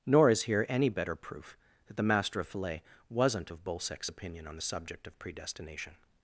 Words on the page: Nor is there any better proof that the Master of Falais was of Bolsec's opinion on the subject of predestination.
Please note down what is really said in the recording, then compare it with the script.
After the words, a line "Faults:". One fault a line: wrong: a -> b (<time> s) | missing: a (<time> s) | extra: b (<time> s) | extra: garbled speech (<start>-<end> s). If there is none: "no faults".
Nor is here any better proof that the Master of Falais wasn't of Bolsec's opinion on the subject of predestination.
Faults:
wrong: there -> here (0.4 s)
wrong: was -> wasn't (3.1 s)